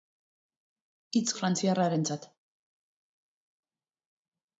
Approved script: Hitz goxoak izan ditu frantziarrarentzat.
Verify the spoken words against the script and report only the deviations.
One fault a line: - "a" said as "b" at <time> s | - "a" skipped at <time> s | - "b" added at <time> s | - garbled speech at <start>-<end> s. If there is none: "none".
- "goxoak izan ditu" skipped at 1.4 s